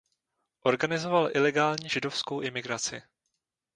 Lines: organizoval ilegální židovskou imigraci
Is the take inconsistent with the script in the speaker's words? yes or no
no